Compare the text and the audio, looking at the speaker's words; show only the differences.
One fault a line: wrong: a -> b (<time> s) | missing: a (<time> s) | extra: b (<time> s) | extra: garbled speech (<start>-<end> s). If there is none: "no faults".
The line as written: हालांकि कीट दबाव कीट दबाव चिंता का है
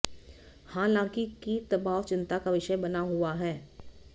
wrong: कीट दबाव चिंता का -> चिंता का विषय बना हुआ (2.0 s)